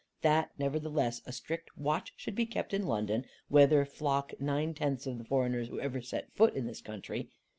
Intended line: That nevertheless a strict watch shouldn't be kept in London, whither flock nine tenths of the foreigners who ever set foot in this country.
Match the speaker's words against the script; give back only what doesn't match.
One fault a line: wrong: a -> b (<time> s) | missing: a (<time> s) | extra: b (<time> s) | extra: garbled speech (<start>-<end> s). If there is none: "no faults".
wrong: shouldn't -> should (2.1 s)